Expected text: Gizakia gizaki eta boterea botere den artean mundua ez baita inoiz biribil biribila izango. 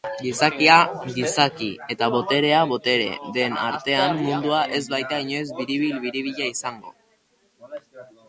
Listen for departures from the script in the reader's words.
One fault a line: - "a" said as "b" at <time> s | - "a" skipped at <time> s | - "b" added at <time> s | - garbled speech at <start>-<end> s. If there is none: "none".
none